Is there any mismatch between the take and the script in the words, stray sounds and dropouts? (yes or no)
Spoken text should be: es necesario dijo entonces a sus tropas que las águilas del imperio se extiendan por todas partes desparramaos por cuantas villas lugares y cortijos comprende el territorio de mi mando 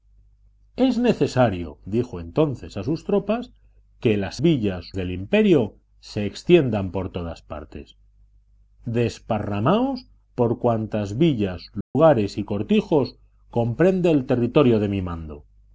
yes